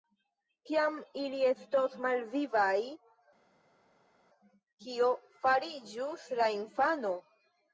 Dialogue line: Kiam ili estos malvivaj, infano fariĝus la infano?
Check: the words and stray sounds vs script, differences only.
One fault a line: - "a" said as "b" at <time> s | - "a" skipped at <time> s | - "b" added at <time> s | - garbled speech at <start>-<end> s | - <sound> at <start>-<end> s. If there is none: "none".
- "infano" said as "kio" at 4.9 s